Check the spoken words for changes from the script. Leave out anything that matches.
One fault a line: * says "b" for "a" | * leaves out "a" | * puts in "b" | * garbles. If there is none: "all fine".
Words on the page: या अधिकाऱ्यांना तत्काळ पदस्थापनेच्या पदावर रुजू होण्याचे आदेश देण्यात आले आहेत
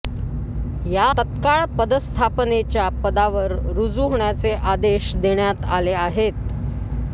* leaves out "अधिकाऱ्यांना"